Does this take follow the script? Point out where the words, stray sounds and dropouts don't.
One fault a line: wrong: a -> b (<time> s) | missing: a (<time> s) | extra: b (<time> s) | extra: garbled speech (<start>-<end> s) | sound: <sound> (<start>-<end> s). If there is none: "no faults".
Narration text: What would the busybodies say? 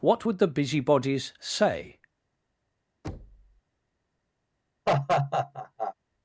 sound: thud (3.0-3.6 s)
sound: laugh (4.9-5.9 s)